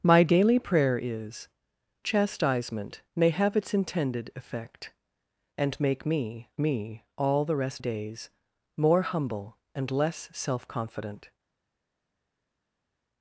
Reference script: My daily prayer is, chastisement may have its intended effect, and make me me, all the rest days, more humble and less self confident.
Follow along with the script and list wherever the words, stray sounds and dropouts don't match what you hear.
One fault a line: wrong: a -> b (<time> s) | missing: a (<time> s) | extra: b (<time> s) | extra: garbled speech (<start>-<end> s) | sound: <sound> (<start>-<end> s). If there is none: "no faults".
no faults